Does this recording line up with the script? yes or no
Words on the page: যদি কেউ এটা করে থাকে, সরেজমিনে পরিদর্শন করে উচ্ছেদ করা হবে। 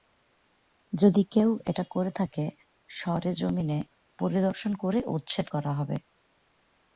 yes